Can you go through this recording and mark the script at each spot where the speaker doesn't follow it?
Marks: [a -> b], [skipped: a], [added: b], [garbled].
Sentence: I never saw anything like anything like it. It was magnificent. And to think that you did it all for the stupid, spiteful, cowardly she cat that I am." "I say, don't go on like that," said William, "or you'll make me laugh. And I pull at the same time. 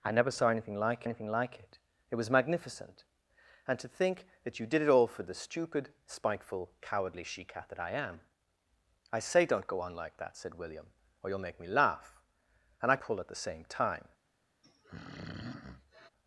I never saw anything like anything like it. It was magnificent. And to think that you did it all for the stupid, spiteful, cowardly she cat that I am." "I say, don't go on like that," said William, "or you'll make me laugh. And I pull at the same time.